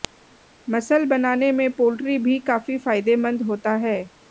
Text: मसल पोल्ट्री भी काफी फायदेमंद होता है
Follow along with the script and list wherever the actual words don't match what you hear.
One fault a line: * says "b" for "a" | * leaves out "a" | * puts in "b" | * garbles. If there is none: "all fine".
* puts in "बनाने में"